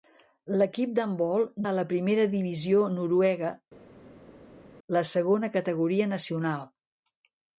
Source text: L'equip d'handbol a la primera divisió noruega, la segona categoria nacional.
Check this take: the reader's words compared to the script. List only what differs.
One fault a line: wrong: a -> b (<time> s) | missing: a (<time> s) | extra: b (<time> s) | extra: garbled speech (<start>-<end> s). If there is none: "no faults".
no faults